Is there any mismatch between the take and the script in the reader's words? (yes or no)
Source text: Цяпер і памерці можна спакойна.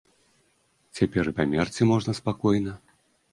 no